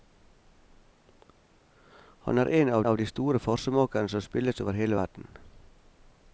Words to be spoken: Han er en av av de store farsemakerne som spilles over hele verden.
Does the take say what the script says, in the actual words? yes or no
yes